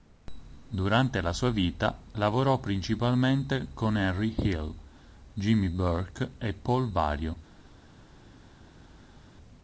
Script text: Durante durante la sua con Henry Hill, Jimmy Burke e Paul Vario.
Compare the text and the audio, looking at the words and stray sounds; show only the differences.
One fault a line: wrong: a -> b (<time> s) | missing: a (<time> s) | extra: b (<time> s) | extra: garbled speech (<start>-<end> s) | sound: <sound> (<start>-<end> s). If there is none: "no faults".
missing: durante (1.2 s)
extra: vita lavorò principalmente (1.5 s)